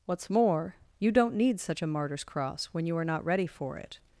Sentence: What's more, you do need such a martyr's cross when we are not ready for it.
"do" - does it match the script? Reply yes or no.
no